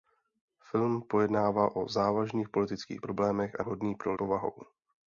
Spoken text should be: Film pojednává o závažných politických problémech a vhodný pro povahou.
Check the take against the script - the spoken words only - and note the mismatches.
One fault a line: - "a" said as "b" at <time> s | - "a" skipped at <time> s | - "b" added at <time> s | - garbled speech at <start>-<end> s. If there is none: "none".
none